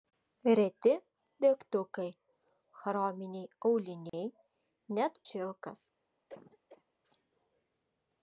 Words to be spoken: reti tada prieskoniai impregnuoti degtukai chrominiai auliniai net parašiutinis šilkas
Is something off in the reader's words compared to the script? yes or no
yes